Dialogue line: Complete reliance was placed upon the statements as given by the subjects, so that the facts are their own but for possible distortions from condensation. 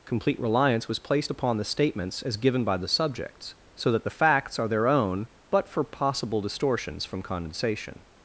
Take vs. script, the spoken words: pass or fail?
pass